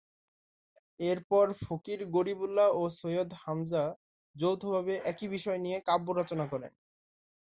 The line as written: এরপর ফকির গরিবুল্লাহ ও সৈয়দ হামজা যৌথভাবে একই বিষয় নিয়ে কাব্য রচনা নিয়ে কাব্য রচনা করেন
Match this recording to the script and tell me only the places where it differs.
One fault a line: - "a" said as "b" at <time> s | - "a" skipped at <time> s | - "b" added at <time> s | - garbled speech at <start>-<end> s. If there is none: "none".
- "নিয়ে কাব্য রচনা" skipped at 6.4 s